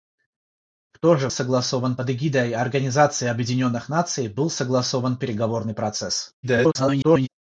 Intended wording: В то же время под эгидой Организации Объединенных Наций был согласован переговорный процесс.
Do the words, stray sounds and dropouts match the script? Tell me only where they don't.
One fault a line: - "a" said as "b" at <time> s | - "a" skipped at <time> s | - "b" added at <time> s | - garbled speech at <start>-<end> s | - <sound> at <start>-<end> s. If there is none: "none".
- "время" said as "согласован" at 1.3 s
- garbled speech at 6.4-7.3 s